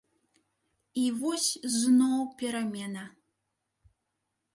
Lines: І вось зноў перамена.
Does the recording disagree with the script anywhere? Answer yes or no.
no